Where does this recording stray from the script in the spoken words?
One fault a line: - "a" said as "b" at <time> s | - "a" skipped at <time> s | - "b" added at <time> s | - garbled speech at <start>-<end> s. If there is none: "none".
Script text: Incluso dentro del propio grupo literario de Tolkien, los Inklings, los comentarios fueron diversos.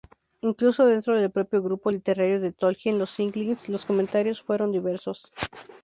none